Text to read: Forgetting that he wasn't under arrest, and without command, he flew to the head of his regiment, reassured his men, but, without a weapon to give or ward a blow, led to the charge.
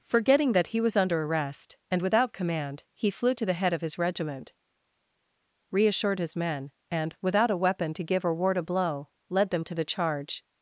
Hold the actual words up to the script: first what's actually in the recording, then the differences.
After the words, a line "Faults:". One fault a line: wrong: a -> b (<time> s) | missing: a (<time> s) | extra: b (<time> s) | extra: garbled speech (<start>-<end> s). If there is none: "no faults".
Forgetting that he was under arrest, and without command, he flew to the head of his regiment, reassured his men, and, without a weapon to give or ward a blow, led them to the charge.
Faults:
wrong: wasn't -> was (0.8 s)
wrong: but -> and (6.9 s)
extra: them (9.5 s)